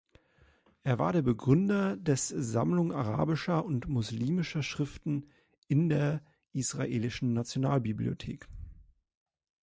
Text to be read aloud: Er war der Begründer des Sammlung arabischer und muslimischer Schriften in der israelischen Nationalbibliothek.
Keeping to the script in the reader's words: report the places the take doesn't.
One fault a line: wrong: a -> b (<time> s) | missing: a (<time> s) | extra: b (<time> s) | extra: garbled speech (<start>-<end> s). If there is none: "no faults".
no faults